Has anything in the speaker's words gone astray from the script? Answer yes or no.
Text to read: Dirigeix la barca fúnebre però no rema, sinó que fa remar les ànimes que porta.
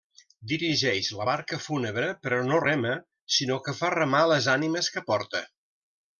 no